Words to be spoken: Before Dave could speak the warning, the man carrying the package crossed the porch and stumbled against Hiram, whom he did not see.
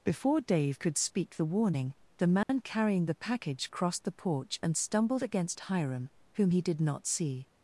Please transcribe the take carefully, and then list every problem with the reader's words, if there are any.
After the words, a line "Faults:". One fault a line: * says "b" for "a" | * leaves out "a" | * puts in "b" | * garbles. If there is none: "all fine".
Before Dave could speak the warning, the man carrying the package crossed the porch and stumbled against Hiram, whom he did not see.
Faults:
all fine